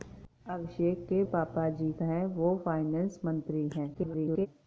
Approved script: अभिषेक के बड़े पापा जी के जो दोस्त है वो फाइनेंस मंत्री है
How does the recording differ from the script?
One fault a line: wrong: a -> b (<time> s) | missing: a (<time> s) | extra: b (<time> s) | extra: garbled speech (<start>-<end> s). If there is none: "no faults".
missing: बड़े (1.2 s)
missing: के जो दोस्त (1.9 s)
extra: garbled speech (3.9-4.5 s)